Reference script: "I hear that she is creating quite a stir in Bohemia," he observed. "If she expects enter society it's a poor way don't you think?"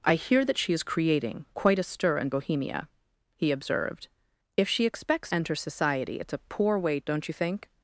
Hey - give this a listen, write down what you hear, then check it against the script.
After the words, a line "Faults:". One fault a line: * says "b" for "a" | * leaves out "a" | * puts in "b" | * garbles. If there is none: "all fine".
"I hear that she is creating quite a stir in Bohemia," he observed. "If she expects enter society it's a poor way don't you think?"
Faults:
all fine